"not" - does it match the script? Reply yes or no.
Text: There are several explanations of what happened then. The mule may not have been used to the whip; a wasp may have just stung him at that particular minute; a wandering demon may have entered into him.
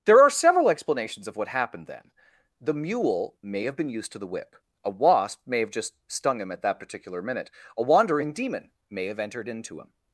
no